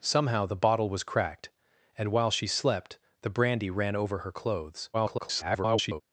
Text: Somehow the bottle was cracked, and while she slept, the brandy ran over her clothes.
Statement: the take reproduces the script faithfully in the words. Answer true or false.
false